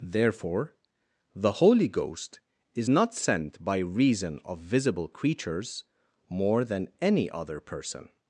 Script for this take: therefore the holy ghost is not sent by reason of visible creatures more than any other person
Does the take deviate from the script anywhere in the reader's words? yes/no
no